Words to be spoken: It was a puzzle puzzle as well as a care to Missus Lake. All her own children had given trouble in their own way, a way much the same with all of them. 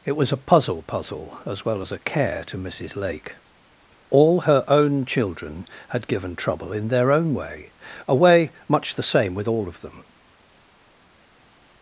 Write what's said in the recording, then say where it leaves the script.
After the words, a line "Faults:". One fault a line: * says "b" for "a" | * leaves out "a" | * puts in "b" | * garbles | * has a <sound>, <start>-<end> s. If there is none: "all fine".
It was a puzzle puzzle as well as a care to Missus Lake. All her own children had given trouble in their own way, a way much the same with all of them.
Faults:
all fine